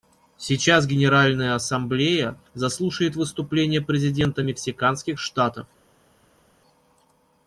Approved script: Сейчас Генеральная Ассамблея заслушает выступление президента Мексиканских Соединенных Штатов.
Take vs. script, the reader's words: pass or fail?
fail